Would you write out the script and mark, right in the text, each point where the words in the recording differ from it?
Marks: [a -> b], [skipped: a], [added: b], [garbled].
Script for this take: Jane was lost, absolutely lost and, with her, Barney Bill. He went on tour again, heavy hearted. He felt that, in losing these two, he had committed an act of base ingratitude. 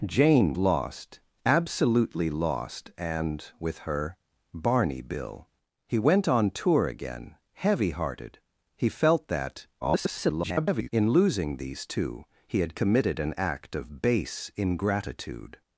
Jane [skipped: was] lost, absolutely lost and, with her, Barney Bill. He went on tour again, heavy hearted. He felt that, [garbled] in losing these two, he had committed an act of base ingratitude.